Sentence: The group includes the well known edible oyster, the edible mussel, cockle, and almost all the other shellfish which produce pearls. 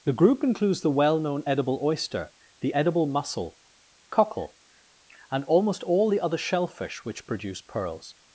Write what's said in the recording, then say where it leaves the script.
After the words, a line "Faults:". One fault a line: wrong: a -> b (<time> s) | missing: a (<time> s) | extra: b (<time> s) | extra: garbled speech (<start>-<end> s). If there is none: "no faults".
The group includes the well known edible oyster, the edible mussel, cockle, and almost all the other shellfish which produce pearls.
Faults:
no faults